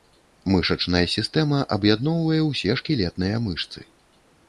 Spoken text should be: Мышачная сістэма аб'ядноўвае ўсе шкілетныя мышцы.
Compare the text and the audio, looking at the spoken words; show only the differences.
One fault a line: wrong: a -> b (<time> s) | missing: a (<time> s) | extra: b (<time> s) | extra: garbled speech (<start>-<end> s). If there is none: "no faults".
no faults